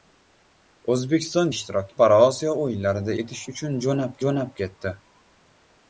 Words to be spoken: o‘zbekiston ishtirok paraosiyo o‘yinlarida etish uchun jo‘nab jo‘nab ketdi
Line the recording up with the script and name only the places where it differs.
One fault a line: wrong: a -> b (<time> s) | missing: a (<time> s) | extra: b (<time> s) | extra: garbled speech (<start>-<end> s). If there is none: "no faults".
no faults